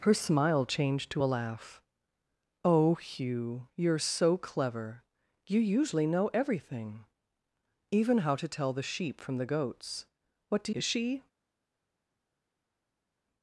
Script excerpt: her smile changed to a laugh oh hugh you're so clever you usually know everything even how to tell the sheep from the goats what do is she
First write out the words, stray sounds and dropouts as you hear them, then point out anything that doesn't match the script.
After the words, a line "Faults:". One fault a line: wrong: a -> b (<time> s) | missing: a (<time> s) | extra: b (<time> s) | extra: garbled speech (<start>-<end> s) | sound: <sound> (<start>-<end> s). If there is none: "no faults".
her smile changed to a laugh oh hugh you're so clever you usually know everything even how to tell the sheep from the goats what do is she
Faults:
no faults